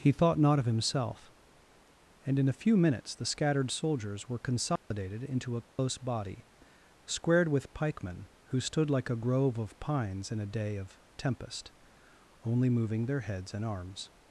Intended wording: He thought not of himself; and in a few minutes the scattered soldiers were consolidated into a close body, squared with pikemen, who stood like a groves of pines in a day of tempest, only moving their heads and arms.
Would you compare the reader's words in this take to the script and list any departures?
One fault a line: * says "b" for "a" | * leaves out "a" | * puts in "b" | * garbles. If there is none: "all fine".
* says "grove" for "groves"